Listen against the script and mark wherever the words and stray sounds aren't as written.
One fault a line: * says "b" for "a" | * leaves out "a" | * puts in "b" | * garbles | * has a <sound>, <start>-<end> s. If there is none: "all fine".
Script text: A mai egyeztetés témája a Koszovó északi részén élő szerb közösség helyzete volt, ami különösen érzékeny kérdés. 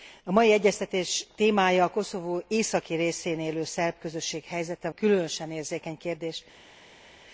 * leaves out "volt ami"